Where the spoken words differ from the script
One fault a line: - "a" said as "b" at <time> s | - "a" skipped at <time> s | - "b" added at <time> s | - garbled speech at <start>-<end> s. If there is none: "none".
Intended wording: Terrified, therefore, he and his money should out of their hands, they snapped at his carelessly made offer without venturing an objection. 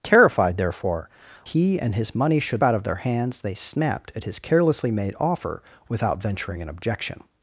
none